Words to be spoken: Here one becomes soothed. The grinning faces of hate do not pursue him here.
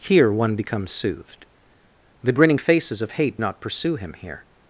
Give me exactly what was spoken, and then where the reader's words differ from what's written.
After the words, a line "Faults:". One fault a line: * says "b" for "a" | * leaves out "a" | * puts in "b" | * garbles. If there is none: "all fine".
Here one becomes soothed. The grinning faces of hate not pursue him here.
Faults:
* leaves out "do"